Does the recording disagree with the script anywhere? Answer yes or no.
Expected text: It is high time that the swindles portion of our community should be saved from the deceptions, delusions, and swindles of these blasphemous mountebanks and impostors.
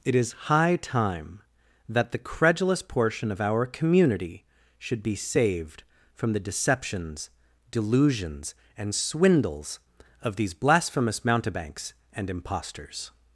yes